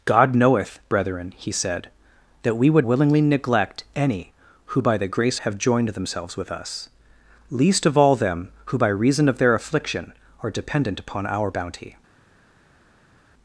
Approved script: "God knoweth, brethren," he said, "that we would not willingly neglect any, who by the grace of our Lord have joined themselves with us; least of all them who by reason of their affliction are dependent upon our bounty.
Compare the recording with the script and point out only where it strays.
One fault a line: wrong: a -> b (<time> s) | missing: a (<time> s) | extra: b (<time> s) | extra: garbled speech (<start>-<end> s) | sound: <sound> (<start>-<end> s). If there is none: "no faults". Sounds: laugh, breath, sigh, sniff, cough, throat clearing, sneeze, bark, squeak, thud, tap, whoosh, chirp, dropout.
missing: not (2.9 s)
missing: of our Lord (5.4 s)